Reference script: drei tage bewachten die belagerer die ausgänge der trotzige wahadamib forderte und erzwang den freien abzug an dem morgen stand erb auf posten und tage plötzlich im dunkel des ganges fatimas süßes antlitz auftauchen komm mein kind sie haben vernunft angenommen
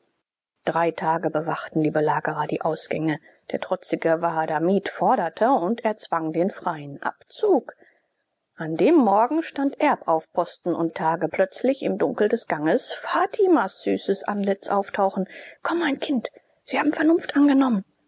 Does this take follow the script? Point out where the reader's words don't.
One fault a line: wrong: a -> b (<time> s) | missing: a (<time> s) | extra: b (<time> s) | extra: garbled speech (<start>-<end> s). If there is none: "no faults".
no faults